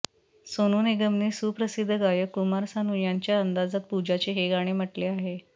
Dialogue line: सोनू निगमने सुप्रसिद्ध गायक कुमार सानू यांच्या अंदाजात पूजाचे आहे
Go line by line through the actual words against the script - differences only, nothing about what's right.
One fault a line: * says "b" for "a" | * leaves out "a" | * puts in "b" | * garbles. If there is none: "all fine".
* puts in "हे गाणे म्हटले"